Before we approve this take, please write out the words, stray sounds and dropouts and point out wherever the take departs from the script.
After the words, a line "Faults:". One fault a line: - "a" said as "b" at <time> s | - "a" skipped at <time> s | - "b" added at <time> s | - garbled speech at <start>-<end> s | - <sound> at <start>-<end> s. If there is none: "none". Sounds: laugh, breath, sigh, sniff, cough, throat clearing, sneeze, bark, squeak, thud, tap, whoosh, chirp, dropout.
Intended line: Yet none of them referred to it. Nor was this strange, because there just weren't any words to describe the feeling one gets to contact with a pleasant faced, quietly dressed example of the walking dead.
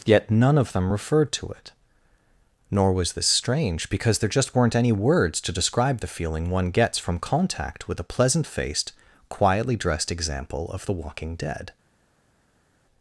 Yet none of them referred to it. Nor was this strange, because there just weren't any words to describe the feeling one gets from contact with a pleasant faced, quietly dressed example of the walking dead.
Faults:
- "to" said as "from" at 7.0 s